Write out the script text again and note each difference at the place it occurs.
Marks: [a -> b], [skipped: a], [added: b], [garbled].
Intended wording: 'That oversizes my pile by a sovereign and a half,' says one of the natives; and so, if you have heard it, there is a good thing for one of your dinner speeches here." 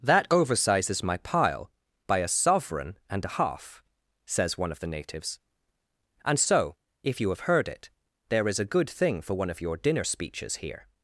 'That oversizes my pile by a sovereign and a half,' says one of the natives; and so, if you have heard it, there is a good thing for one of your dinner speeches here."